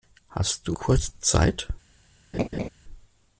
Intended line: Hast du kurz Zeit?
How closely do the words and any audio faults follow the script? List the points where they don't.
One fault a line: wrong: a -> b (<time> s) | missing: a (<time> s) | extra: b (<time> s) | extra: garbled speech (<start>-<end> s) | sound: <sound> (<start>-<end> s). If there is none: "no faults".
sound: laugh (2.3-2.7 s)